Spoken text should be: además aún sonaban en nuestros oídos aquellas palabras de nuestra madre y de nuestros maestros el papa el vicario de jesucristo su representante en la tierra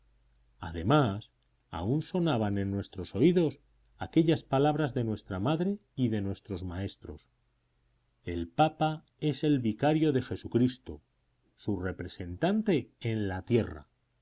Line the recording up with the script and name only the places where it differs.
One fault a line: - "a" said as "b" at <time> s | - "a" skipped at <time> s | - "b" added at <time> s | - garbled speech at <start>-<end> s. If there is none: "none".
- "es" added at 9.2 s